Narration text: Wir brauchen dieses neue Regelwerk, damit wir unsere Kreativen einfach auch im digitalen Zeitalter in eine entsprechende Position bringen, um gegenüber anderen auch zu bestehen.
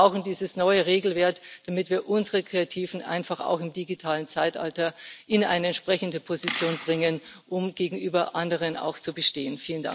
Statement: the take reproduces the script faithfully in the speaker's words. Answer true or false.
true